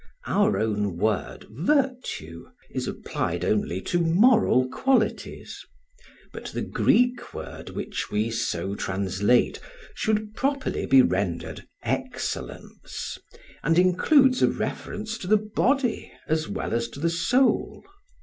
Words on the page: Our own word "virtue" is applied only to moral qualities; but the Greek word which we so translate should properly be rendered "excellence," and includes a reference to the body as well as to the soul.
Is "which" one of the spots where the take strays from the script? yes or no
no